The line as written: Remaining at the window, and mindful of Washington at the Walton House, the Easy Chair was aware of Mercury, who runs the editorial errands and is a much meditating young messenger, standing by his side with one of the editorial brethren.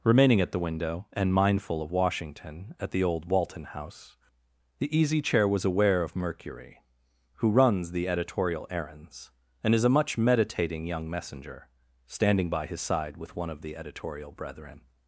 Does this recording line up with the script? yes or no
no